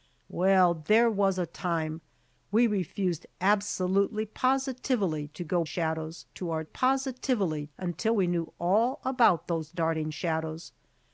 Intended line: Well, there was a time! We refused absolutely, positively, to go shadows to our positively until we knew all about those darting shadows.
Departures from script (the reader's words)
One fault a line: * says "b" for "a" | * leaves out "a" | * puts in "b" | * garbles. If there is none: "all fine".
all fine